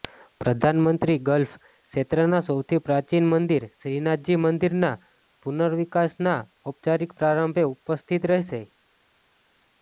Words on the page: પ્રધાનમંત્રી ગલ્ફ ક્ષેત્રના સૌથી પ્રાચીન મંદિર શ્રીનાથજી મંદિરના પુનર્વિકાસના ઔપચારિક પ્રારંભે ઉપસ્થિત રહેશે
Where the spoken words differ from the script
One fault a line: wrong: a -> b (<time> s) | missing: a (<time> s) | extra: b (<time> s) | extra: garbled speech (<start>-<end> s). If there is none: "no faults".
no faults